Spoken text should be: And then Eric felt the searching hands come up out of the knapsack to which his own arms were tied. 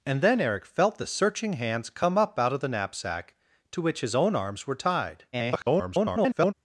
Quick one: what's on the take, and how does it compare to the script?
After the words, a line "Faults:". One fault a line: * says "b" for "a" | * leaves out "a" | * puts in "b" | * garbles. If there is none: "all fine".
And then Eric felt the searching hands come up out of the knapsack to which his own arms were tied. [garbled]
Faults:
* garbles